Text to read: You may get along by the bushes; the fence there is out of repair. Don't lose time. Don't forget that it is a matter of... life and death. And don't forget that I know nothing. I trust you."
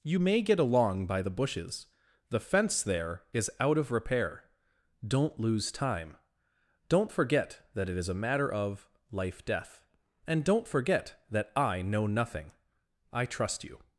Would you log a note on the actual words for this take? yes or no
yes